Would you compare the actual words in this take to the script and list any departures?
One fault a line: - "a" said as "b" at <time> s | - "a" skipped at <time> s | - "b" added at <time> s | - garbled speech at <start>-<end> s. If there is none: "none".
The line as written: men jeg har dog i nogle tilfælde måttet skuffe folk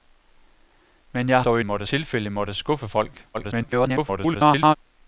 - "har" skipped at 1.4 s
- "nogle" said as "måttet" at 1.6 s
- garbled speech at 3.3-4.8 s